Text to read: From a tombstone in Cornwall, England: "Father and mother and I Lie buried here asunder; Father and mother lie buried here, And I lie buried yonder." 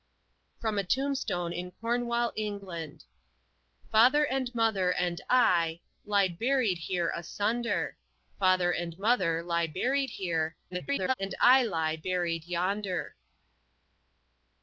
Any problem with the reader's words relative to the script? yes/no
yes